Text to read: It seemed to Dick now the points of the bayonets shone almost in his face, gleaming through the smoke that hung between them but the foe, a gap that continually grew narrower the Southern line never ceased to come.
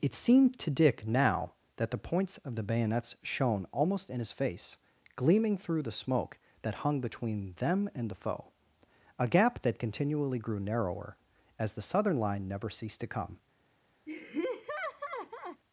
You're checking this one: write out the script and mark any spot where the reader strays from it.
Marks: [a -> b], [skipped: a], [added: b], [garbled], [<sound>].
It seemed to Dick now [added: that] the points of the bayonets shone almost in his face, gleaming through the smoke that hung between them [but -> and] the foe, a gap that continually grew narrower [added: as] the Southern line never ceased to come. [laugh]